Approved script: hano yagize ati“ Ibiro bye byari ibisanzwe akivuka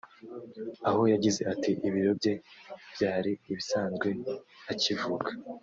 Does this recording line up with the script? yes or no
no